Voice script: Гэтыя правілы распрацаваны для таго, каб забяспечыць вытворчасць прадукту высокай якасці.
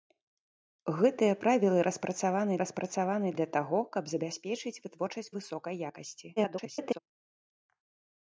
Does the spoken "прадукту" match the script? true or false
false